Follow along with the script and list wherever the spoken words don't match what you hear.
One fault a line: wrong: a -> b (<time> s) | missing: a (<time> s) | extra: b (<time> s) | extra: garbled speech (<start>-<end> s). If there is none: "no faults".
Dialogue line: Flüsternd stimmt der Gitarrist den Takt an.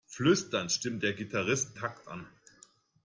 missing: den (1.8 s)